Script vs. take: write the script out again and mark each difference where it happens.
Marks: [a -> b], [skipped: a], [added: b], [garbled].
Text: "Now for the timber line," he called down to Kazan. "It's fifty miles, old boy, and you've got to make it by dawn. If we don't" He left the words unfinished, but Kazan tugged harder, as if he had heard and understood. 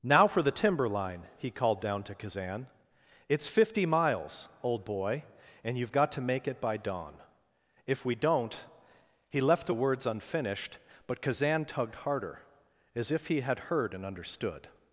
"Now for the timber line," he called down to Kazan. "It's fifty miles, old boy, and you've got to make it by dawn. If we don't" He left the words unfinished, but Kazan tugged harder, as if he had heard and understood.